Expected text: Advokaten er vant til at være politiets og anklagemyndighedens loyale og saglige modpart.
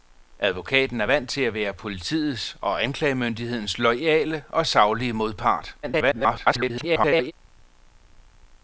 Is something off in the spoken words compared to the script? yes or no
yes